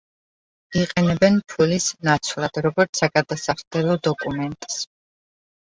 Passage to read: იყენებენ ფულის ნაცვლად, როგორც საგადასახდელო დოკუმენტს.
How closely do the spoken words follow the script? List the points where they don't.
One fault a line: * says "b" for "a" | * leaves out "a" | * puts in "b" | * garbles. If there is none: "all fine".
all fine